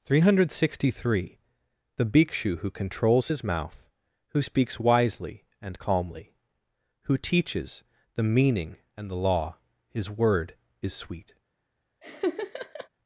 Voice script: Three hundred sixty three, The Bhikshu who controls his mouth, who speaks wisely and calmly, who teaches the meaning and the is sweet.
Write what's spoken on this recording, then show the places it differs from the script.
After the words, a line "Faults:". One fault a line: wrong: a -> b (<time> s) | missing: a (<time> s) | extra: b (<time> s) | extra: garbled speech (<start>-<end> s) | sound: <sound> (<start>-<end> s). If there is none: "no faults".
Three hundred sixty three, The Bhikshu who controls his mouth, who speaks wisely and calmly, who teaches the meaning and the law, his word is sweet.
Faults:
extra: law his word (9.1 s)
sound: laugh (12.0-12.9 s)